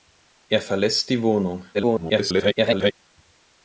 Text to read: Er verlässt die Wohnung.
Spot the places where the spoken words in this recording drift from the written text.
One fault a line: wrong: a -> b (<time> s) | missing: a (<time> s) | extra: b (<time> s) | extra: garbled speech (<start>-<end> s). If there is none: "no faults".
extra: garbled speech (1.7-2.9 s)